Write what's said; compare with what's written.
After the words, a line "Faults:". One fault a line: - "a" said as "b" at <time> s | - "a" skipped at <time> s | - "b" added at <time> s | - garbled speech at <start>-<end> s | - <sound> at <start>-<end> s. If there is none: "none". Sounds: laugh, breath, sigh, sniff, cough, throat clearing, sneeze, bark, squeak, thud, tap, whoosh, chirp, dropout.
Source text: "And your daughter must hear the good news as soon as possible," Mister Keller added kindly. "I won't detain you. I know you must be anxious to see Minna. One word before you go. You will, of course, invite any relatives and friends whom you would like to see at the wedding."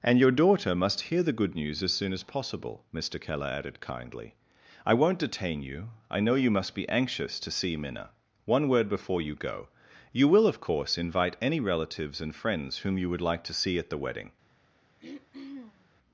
"And your daughter must hear the good news as soon as possible," Mister Keller added kindly. "I won't detain you. I know you must be anxious to see Minna. One word before you go. You will, of course, invite any relatives and friends whom you would like to see at the wedding."
Faults:
- throat clearing at 15.0-15.9 s